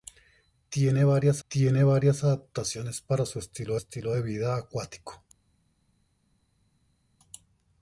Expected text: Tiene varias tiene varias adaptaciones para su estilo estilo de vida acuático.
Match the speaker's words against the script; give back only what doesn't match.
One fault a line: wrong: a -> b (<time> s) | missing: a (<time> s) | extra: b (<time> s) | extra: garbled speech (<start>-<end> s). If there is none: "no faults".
no faults